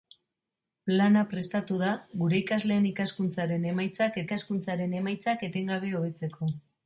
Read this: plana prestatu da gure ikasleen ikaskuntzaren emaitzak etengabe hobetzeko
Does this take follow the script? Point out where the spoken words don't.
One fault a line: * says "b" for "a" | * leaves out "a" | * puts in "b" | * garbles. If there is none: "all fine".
* puts in "ikaskuntzaren emaitzak"